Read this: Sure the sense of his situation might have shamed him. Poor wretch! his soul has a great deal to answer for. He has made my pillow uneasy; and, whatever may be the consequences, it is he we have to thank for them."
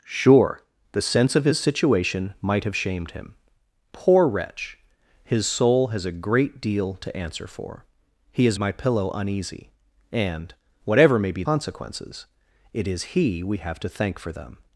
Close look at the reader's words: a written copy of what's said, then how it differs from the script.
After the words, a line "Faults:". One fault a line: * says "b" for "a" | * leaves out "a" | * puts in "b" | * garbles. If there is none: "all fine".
Sure the sense of his situation might have shamed him. Poor wretch! his soul has a great deal to answer for. He has my pillow uneasy; and, whatever may be consequences, it is he we have to thank for them."
Faults:
* leaves out "made"
* leaves out "the"